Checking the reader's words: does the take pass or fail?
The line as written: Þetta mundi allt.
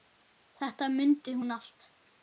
fail